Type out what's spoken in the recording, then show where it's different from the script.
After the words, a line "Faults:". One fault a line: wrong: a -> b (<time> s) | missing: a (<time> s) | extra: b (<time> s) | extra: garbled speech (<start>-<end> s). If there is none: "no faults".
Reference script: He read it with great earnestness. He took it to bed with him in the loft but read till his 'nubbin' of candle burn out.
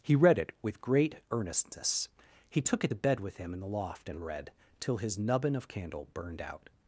He read it with great earnestness. He took it to bed with him in the loft and read till his 'nubbin' of candle burned out.
Faults:
wrong: but -> and (4.1 s)
wrong: burn -> burned (6.1 s)